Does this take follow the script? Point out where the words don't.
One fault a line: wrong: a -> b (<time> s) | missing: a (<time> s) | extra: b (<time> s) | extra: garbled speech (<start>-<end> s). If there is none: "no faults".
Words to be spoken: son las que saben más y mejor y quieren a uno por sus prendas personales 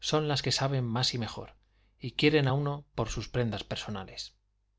no faults